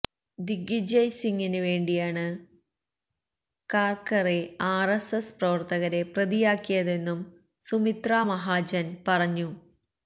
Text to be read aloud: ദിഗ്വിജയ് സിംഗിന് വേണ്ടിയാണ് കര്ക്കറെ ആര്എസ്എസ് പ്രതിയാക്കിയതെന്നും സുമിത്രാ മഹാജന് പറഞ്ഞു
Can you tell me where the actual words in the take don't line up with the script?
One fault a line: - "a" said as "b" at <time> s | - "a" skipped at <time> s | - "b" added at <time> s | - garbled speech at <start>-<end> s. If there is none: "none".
- "പ്രവര്ത്തകരെ" added at 5.4 s